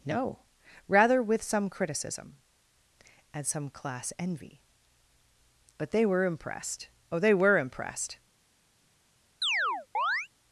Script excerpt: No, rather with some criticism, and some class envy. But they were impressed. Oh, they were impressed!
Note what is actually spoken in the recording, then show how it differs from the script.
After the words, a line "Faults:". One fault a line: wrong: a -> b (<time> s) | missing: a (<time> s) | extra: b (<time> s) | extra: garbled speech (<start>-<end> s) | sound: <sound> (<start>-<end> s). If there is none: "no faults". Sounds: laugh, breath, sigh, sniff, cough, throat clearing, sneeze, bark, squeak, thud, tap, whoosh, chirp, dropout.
No, rather with some criticism, and some class envy. But they were impressed. Oh, they were impressed!
Faults:
sound: chirp (9.4-10.3 s)